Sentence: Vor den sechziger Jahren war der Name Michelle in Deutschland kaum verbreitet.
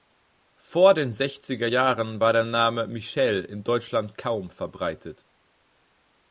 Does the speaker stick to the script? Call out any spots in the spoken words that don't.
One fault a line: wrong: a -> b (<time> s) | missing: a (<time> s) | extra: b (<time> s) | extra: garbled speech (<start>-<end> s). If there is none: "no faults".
no faults